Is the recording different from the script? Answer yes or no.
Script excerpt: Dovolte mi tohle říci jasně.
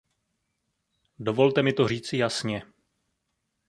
yes